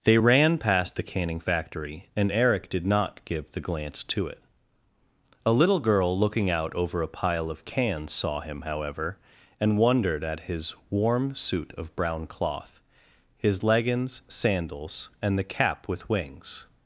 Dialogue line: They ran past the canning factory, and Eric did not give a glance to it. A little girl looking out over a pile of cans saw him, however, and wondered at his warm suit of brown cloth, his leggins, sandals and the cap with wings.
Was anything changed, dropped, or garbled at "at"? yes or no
no